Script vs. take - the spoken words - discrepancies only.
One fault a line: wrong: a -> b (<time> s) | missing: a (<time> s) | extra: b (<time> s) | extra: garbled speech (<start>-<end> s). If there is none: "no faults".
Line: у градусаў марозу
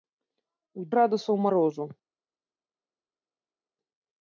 no faults